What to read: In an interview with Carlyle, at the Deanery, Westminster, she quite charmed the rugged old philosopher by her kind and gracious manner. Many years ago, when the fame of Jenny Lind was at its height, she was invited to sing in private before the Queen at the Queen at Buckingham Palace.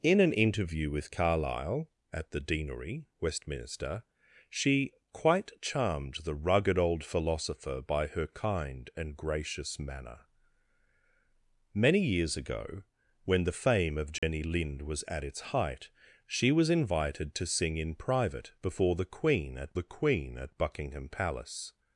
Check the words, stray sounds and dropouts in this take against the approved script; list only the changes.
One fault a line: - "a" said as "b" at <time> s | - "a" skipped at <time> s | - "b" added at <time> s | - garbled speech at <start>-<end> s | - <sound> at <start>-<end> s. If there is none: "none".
- dropout at 14.2-14.2 s